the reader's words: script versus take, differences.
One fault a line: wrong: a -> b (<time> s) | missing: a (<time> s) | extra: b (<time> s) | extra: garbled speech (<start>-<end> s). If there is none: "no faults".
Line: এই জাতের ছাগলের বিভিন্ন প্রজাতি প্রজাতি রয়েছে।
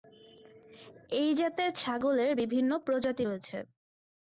missing: প্রজাতি (3.2 s)